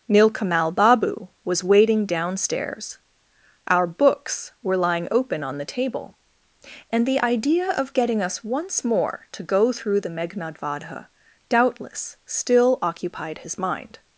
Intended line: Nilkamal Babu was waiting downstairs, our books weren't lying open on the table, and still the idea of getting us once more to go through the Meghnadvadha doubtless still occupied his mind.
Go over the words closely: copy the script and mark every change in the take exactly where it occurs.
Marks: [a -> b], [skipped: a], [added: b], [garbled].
Nilkamal Babu was waiting downstairs, our books [weren't -> were] lying open on the table, and [skipped: still] the idea of getting us once more to go through the Meghnadvadha doubtless still occupied his mind.